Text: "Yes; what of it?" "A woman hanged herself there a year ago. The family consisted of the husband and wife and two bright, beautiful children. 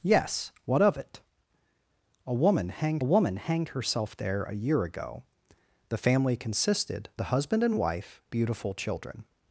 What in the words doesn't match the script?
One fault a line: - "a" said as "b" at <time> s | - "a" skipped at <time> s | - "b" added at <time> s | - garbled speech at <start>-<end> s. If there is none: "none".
- "woman hanged" added at 3.0 s
- "of" skipped at 7.1 s
- "and two bright" skipped at 8.2 s